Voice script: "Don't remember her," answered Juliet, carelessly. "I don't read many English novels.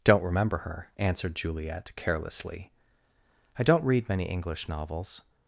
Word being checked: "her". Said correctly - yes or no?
yes